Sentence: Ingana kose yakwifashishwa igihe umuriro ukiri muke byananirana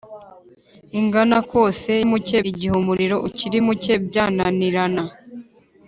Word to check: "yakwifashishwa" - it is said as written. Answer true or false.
false